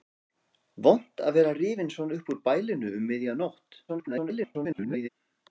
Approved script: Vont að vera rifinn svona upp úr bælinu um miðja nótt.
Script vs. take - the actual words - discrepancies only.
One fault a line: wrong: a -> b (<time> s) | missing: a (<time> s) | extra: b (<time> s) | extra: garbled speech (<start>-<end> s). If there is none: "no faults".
extra: garbled speech (3.9-5.1 s)